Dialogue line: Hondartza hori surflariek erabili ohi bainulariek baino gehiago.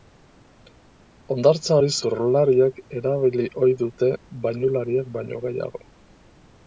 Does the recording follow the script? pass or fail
fail